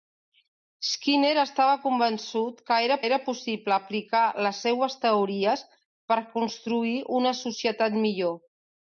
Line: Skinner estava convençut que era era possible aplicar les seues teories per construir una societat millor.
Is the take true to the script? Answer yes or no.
yes